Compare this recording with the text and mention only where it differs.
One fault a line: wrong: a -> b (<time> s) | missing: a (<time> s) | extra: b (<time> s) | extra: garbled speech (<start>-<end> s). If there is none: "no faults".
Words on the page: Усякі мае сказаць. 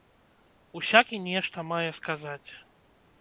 extra: нешта (1.3 s)